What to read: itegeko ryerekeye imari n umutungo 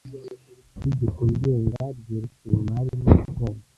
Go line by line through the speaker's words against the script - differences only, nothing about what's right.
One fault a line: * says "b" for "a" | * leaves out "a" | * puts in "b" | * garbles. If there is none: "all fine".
* puts in "ngenga"